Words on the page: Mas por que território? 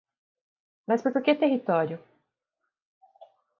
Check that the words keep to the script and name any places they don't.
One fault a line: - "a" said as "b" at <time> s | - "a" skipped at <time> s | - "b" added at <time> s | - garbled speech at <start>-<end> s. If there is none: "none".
- "por" added at 1.1 s